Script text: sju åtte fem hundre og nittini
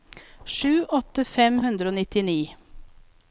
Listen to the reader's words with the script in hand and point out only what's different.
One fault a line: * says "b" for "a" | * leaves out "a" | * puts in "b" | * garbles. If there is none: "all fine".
all fine